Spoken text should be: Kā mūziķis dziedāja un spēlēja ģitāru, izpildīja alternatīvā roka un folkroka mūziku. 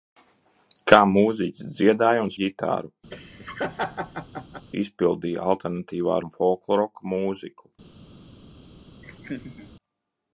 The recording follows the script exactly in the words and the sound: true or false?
false